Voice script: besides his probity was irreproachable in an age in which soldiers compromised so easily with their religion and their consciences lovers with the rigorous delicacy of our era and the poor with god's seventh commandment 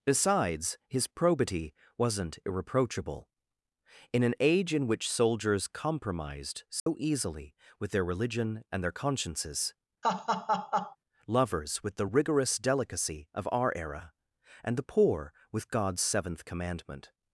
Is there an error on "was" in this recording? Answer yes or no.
yes